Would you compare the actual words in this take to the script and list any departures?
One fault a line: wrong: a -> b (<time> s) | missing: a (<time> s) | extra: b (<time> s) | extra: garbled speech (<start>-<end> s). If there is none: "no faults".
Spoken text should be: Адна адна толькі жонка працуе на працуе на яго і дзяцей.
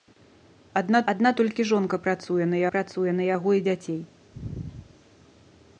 no faults